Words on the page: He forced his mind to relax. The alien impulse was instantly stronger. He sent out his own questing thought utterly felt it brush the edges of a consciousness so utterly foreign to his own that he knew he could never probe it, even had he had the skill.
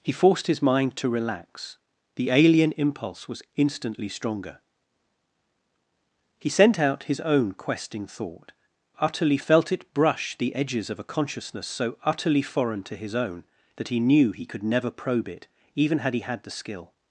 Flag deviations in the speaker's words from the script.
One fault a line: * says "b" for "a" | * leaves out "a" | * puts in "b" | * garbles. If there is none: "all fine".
all fine